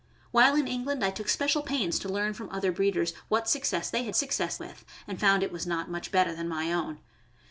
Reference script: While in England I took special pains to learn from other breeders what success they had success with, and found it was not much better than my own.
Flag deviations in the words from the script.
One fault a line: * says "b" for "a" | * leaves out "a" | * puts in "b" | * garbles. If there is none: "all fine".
all fine